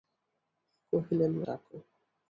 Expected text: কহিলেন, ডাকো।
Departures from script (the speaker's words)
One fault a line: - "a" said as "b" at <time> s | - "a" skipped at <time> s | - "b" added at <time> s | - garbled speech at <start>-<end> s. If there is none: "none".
none